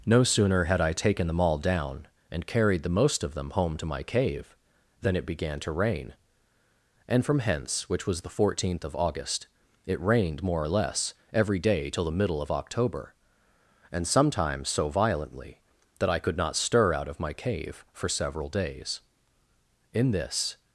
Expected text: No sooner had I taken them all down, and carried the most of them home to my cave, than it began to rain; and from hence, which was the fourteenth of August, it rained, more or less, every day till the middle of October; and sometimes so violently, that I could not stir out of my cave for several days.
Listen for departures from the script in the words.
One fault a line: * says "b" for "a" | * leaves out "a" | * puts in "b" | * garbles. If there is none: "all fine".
* puts in "In this"